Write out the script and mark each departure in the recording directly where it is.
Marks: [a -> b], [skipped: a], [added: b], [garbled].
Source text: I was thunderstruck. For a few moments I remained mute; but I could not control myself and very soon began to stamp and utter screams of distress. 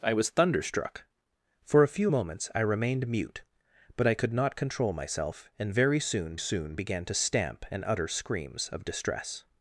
I was thunderstruck. For a few moments I remained mute; but I could not control myself and very soon [added: soon] began to stamp and utter screams of distress.